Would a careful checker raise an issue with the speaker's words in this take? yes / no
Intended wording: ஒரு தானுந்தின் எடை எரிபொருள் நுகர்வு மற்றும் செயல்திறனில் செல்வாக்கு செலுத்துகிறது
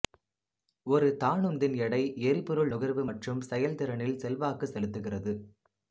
no